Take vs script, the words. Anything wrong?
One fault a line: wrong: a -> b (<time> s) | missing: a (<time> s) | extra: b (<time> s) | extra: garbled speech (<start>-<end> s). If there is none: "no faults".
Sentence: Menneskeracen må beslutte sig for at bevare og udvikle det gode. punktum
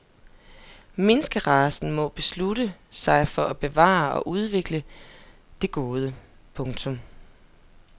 no faults